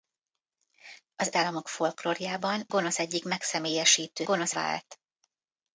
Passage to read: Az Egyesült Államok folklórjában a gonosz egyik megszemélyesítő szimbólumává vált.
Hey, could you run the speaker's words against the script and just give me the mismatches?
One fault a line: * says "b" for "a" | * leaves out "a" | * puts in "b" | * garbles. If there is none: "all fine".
* leaves out "Egyesült"
* leaves out "a"
* says "gonosz" for "szimbólumává"